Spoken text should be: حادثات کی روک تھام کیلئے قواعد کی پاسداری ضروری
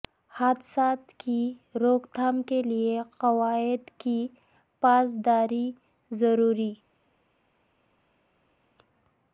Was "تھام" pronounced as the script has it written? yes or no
yes